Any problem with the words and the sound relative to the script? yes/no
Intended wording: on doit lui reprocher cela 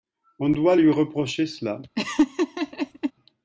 yes